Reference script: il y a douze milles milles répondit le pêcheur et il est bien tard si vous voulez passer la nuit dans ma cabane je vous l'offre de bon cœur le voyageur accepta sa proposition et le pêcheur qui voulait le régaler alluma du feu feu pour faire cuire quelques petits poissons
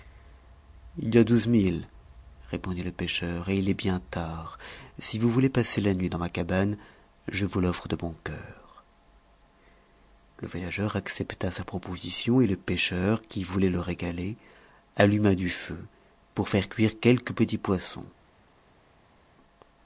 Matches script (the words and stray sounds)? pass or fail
fail